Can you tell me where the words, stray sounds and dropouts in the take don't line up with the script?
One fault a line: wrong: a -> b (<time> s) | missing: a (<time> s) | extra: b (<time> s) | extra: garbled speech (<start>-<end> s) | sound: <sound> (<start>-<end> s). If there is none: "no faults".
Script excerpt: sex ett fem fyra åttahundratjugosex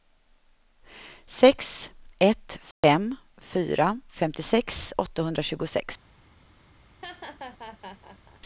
sound: dropout (2.7-2.8 s)
extra: femtiosex (4.1 s)
sound: laugh (7.0-8.4 s)